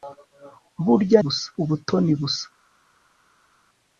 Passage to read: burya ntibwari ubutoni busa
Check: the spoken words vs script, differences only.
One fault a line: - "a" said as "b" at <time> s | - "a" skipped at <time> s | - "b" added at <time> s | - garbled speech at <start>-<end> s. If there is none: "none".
- "ntibwari" said as "busa" at 1.2 s